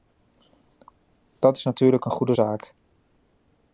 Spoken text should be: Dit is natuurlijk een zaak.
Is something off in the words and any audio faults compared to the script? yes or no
yes